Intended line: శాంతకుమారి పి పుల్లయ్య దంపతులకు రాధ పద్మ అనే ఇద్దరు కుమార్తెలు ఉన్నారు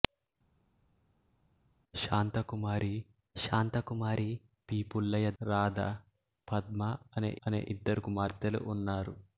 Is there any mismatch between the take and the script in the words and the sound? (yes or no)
yes